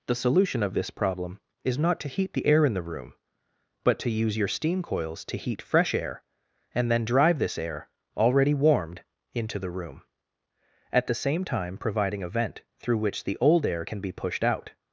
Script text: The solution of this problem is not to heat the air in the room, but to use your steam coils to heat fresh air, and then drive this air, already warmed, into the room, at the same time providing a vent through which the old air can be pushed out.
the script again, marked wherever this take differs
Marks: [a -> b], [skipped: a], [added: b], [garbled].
The solution of this problem is not to heat the air in the room, but to use your steam coils to heat fresh air, and then drive this air, already warmed, into the room, at the same time providing a vent through which the old air can be pushed out.